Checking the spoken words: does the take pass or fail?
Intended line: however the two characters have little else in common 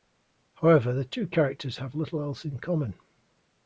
pass